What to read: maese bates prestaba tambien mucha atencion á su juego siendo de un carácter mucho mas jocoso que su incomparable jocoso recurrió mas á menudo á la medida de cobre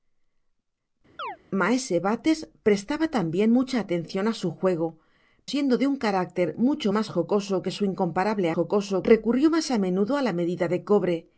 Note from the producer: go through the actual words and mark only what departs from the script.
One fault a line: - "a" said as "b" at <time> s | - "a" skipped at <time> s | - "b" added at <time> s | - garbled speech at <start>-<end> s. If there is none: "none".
none